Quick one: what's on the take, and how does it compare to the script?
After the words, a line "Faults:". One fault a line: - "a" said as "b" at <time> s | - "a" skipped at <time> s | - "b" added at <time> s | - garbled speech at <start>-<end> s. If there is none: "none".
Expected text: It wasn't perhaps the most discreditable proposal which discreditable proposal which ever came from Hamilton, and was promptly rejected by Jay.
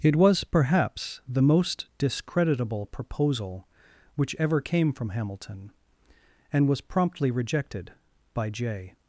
It was perhaps the most discreditable proposal which ever came from Hamilton, and was promptly rejected by Jay.
Faults:
- "wasn't" said as "was" at 0.1 s
- "discreditable proposal which" skipped at 4.3 s